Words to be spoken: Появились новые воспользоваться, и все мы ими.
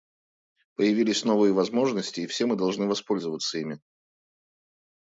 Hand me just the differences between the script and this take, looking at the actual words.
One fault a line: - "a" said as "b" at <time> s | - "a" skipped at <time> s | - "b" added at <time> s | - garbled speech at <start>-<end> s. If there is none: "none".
- "воспользоваться" said as "возможности" at 1.5 s
- "должны воспользоваться" added at 2.5 s